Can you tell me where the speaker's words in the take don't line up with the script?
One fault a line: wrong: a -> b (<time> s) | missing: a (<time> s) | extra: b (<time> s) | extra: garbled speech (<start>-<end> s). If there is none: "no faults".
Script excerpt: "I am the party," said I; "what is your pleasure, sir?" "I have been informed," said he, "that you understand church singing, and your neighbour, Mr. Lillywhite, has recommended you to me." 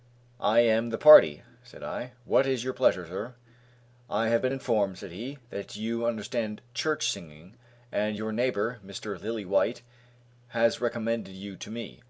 no faults